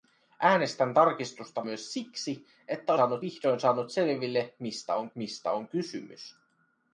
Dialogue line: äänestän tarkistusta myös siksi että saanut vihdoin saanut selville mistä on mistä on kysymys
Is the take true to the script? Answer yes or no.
yes